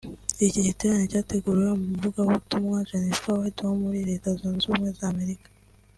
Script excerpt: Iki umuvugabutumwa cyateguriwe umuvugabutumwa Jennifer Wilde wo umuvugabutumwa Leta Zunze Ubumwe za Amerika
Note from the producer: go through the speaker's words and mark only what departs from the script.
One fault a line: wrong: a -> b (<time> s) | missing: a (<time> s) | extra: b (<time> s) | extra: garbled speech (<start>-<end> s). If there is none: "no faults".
wrong: umuvugabutumwa -> giterane (0.7 s)
wrong: umuvugabutumwa -> muri (3.8 s)